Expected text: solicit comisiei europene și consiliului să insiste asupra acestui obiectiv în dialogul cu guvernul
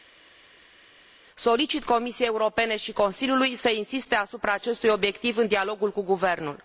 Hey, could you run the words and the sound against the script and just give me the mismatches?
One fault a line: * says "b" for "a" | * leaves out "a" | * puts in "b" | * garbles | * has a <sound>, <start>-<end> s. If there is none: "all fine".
all fine